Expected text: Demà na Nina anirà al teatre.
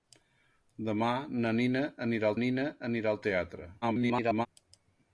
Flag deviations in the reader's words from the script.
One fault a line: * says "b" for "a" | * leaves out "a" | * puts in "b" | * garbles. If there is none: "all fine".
* puts in "Nina anirà"
* garbles